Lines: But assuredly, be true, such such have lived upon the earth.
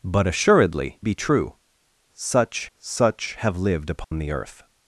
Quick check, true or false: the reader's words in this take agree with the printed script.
true